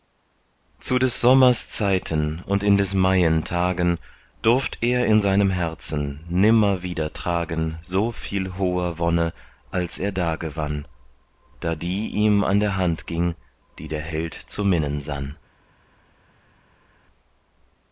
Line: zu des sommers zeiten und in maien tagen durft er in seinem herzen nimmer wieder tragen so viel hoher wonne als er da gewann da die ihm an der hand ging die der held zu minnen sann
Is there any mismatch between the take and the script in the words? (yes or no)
yes